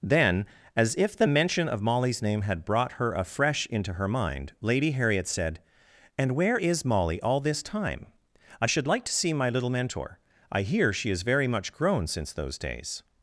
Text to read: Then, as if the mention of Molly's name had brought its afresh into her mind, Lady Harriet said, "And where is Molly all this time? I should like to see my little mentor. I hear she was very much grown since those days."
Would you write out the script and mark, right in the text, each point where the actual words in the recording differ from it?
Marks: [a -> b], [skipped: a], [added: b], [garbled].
Then, as if the mention of Molly's name had brought [its -> her] afresh into her mind, Lady Harriet said, "And where is Molly all this time? I should like to see my little mentor. I hear she [was -> is] very much grown since those days."